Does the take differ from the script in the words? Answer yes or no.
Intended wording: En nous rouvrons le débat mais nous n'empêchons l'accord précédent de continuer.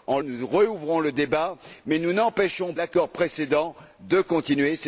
no